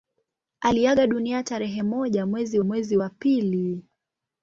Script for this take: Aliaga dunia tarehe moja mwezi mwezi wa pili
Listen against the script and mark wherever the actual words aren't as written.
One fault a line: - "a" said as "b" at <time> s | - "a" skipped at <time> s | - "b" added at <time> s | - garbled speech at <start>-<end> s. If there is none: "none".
none